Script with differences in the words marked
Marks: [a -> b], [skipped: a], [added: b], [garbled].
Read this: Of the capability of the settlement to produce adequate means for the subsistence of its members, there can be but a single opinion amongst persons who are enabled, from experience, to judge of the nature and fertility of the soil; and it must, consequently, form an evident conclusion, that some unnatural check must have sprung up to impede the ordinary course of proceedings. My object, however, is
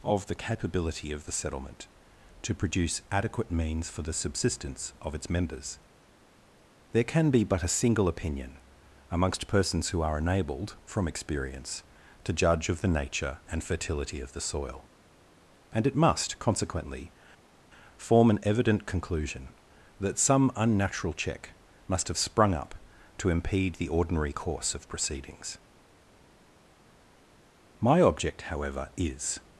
Of the capability of the settlement to produce adequate means for the subsistence of its members, there can be but a single opinion amongst persons who are enabled, from experience, to judge of the nature and fertility of the soil; and it must, consequently, form an evident conclusion, that some unnatural check must have sprung up to impede the ordinary course of proceedings. My object, however, is